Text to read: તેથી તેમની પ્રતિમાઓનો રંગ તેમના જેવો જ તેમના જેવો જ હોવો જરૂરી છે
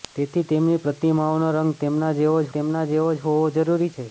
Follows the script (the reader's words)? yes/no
yes